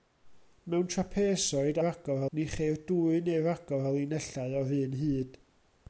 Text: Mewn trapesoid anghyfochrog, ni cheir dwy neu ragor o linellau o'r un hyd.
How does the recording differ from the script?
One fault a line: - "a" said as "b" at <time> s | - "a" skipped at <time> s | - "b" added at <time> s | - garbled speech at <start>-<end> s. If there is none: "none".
- "anghyfochrog" said as "ragor" at 1.9 s